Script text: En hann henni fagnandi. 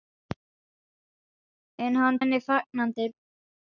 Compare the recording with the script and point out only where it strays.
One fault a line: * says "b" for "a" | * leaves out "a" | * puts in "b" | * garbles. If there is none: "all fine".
all fine